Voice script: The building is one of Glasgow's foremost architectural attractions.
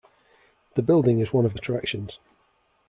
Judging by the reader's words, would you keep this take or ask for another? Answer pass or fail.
fail